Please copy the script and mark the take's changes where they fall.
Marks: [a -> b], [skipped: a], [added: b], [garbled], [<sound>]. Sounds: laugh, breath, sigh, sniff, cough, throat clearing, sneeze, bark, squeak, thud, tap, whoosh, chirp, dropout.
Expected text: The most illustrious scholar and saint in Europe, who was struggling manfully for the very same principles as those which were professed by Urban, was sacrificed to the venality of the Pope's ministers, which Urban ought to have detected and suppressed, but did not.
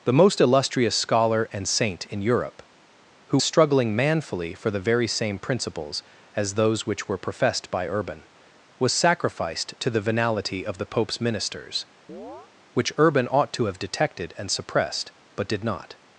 The most illustrious scholar and saint in Europe, who [skipped: was] struggling manfully for the very same principles as those which were professed by Urban, was sacrificed to the venality of the Pope's ministers, [chirp] which Urban ought to have detected and suppressed, but did not.